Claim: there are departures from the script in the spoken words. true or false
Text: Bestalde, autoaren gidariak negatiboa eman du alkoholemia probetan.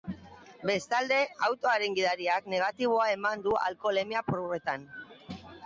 false